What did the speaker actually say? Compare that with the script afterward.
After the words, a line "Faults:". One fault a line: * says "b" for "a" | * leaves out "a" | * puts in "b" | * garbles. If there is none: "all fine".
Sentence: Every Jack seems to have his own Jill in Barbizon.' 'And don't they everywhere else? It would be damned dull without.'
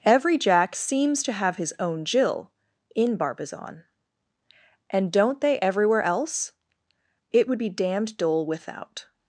Every Jack seems to have his own Jill in Barbizon.' 'And don't they everywhere else? It would be damned dull without.'
Faults:
all fine